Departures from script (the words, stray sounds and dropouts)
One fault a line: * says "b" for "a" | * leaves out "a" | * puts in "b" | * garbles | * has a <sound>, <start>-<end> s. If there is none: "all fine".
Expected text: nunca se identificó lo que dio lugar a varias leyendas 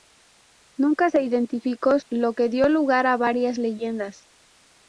all fine